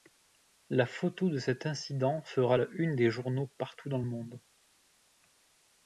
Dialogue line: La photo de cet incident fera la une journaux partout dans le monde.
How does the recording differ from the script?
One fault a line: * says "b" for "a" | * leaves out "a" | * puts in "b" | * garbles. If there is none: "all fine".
* puts in "des"